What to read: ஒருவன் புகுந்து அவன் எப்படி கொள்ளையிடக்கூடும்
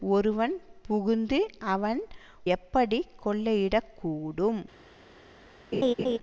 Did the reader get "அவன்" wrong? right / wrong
right